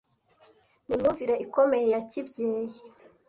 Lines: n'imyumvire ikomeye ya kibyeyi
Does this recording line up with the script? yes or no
yes